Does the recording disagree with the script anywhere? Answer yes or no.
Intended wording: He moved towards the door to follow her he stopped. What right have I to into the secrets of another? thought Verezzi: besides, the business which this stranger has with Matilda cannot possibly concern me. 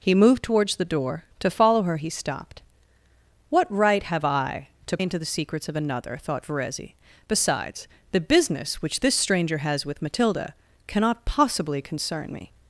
no